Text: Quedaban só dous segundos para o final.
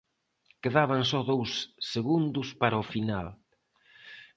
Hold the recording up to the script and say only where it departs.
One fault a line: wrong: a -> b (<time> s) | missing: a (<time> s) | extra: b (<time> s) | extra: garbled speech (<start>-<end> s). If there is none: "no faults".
no faults